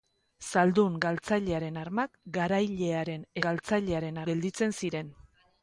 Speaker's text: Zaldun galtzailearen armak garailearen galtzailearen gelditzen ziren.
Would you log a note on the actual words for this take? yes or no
no